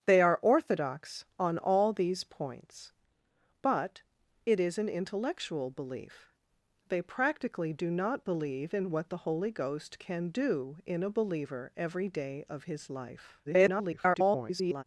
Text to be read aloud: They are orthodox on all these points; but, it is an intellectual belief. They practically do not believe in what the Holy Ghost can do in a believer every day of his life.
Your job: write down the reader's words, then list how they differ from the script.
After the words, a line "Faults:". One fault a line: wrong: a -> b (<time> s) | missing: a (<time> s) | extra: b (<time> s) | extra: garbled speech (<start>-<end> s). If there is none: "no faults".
They are orthodox on all these points; but, it is an intellectual belief. They practically do not believe in what the Holy Ghost can do in a believer every day of his life. [garbled]
Faults:
extra: garbled speech (13.5-14.8 s)